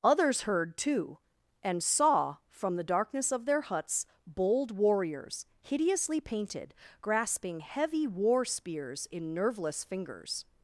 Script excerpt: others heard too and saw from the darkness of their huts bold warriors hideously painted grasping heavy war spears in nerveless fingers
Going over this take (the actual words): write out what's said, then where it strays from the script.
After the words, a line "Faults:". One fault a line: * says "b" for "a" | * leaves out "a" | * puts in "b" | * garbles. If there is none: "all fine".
others heard too and saw from the darkness of their huts bold warriors hideously painted grasping heavy war spears in nerveless fingers
Faults:
all fine